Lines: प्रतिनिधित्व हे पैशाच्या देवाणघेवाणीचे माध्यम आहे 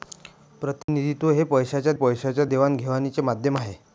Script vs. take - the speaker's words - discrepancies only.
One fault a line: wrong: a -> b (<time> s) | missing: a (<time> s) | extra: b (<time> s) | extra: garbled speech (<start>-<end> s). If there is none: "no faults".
extra: पैशाच्या (1.9 s)